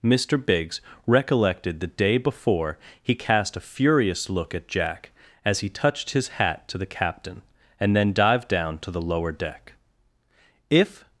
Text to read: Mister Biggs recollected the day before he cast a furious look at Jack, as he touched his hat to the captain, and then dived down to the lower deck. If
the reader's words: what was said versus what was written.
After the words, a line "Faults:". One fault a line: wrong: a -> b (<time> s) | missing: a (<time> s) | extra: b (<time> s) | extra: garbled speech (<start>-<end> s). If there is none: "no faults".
Mister Biggs recollected the day before he cast a furious look at Jack, as he touched his hat to the captain, and then dived down to the lower deck. If
Faults:
no faults